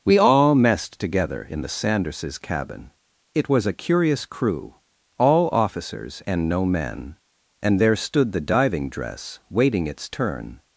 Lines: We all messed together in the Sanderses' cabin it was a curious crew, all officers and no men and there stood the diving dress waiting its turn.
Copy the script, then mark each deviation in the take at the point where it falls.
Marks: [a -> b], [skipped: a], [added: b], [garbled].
We all messed together in the Sanderses' cabin it was a curious crew, all officers and no men and there stood the diving dress waiting its turn.